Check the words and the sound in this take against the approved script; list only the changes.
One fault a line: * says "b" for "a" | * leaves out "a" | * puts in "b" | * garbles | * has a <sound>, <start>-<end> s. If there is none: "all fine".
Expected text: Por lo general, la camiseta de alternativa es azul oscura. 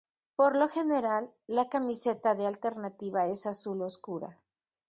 all fine